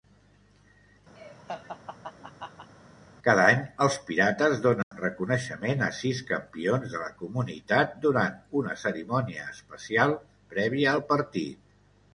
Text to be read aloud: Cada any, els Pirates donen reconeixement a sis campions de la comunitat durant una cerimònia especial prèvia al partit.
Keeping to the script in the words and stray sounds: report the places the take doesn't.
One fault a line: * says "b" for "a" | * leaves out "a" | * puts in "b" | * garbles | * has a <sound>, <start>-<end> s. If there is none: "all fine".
* has a laugh, 1.2-2.7 s
* has a dropout, 4.8-4.9 s